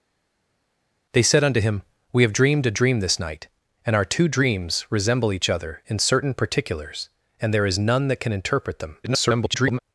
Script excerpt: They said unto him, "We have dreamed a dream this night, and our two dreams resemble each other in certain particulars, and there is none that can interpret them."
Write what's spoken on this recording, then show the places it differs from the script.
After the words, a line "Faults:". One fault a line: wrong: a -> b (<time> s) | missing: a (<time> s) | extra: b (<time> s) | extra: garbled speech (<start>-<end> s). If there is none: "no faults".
They said unto him, "We have dreamed a dream this night, and our two dreams resemble each other in certain particulars, and there is none that can interpret them." [garbled]
Faults:
extra: garbled speech (9.0-9.8 s)